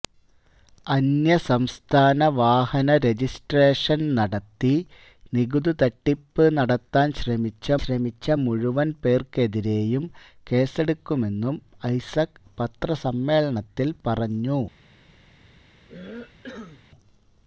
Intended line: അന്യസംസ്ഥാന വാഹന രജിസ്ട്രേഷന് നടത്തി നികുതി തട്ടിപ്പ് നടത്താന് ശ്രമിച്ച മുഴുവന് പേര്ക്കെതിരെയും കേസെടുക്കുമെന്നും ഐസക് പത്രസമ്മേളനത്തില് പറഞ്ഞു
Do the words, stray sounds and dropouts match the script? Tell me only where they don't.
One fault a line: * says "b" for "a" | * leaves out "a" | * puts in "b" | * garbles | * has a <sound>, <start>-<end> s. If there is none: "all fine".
* puts in "ശ്രമിച്ച"
* has a cough, 15.9-16.8 s